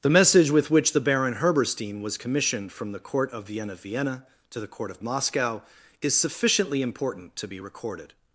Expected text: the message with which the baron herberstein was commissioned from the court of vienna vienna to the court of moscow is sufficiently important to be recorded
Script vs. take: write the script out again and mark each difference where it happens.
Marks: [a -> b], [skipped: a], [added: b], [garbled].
the message with which the baron herberstein was commissioned from the court of vienna vienna to the court of moscow is sufficiently important to be recorded